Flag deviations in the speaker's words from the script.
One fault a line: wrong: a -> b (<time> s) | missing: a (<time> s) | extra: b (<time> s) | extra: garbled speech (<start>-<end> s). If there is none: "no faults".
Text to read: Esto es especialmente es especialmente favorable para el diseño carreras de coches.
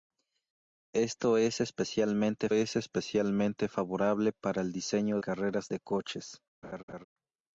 no faults